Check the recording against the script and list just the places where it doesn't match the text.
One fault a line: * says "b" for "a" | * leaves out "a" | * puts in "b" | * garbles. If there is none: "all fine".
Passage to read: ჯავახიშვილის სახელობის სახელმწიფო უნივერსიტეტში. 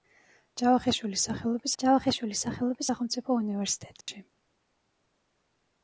* puts in "ჯავახიშვილის სახელობის"